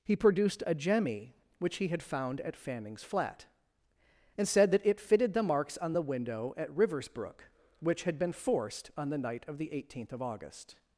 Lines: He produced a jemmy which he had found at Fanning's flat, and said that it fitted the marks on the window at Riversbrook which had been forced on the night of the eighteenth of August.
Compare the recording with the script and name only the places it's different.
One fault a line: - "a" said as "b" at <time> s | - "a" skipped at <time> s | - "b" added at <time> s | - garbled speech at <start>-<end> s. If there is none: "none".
none